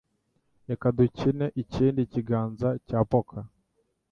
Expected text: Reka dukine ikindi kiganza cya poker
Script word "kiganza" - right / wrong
right